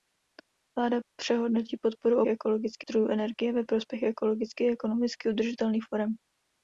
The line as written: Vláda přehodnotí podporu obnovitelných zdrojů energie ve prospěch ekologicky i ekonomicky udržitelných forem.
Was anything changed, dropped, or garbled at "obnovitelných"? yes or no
yes